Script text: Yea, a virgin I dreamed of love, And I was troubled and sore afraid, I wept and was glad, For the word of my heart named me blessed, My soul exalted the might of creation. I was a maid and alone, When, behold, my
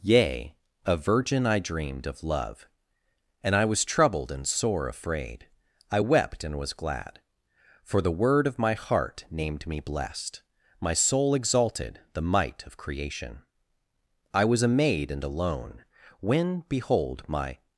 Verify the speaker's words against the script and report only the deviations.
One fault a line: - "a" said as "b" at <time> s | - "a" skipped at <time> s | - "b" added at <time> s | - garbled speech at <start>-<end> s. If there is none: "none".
none